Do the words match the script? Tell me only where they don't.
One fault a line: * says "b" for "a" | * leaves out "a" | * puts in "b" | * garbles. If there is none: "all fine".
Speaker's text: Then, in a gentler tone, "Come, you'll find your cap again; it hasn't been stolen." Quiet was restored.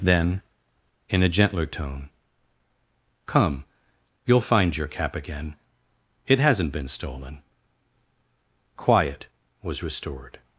all fine